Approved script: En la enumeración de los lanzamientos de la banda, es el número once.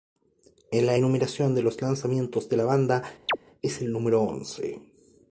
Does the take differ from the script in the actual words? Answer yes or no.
no